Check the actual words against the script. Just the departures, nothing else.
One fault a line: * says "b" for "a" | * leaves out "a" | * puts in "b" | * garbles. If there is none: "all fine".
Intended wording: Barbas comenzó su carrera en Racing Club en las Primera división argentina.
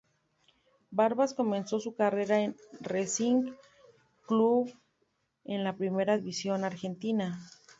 * says "la" for "las"